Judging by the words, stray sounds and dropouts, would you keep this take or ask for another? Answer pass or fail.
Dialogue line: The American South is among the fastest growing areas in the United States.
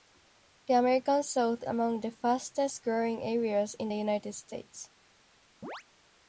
fail